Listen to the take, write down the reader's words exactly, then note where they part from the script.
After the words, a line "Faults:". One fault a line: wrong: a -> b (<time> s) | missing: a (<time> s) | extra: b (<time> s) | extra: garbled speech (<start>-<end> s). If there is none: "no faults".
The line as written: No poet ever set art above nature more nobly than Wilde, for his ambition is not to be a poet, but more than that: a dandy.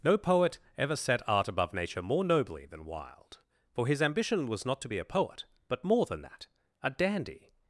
No poet ever set art above nature more nobly than Wilde, for his ambition was not to be a poet, but more than that: a dandy.
Faults:
wrong: is -> was (4.5 s)